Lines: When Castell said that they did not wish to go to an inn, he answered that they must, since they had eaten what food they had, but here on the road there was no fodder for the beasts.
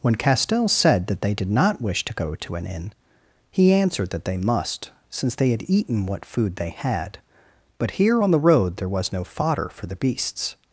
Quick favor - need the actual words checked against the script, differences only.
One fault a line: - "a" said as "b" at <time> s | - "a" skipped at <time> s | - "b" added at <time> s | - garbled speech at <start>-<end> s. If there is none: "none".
none